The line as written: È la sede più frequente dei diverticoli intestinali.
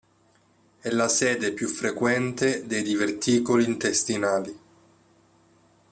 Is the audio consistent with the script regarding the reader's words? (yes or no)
yes